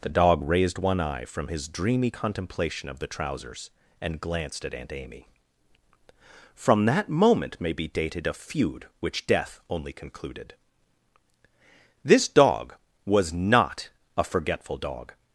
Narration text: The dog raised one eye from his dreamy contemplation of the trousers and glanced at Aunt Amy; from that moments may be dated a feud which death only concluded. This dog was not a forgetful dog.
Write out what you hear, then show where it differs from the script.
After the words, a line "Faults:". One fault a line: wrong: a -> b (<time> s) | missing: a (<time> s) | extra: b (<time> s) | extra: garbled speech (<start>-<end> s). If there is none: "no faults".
The dog raised one eye from his dreamy contemplation of the trousers and glanced at Aunt Amy; from that moment may be dated a feud which death only concluded. This dog was not a forgetful dog.
Faults:
wrong: moments -> moment (7.1 s)